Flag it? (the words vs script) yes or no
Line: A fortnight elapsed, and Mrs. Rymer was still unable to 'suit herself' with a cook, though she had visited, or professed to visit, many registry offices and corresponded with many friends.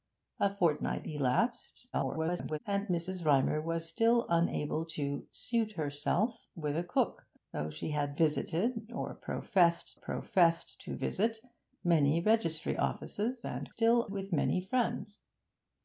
yes